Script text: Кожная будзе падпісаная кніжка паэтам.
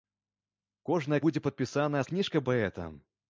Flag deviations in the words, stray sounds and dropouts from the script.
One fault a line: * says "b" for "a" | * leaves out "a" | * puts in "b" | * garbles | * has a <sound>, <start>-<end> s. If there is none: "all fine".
all fine